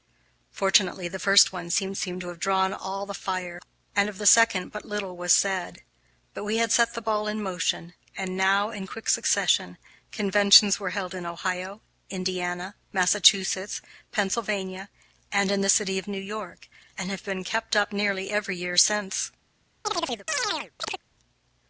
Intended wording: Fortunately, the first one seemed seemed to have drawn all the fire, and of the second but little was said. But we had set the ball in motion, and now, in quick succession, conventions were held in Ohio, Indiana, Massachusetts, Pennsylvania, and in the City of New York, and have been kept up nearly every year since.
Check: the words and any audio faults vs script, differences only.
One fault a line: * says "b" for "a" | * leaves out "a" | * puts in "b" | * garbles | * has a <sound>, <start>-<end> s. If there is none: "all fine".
* has a chirp, 19.8-21.0 s